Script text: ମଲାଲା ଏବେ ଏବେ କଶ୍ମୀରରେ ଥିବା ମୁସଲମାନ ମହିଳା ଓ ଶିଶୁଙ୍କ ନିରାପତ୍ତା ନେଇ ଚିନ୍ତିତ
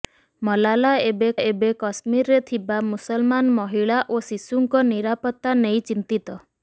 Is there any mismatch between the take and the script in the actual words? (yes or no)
no